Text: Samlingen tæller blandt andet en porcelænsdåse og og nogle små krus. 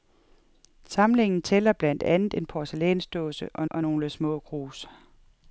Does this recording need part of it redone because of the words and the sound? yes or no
no